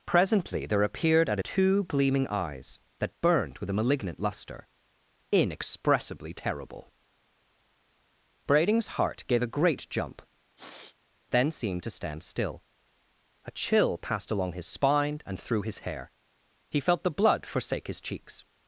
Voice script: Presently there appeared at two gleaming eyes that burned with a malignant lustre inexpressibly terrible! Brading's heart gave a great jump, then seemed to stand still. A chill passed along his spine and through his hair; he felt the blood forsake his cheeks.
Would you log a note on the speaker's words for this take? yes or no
no